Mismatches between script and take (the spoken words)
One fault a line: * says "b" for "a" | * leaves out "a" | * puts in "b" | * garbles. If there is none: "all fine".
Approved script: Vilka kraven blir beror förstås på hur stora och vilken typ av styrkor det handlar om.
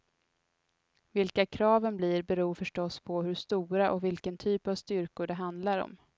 all fine